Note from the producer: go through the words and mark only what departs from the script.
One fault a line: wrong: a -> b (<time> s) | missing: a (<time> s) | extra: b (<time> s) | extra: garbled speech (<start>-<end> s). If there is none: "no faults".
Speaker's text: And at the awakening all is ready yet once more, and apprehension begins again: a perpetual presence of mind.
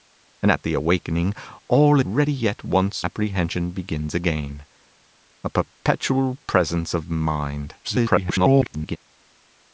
missing: is (2.0 s)
missing: more and (3.1 s)
extra: garbled speech (7.8-9.0 s)